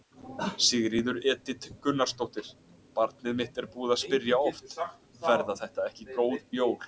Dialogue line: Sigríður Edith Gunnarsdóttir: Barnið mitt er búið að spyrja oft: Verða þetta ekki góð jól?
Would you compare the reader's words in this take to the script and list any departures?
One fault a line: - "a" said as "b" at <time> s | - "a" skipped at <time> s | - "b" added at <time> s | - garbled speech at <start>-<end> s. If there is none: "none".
none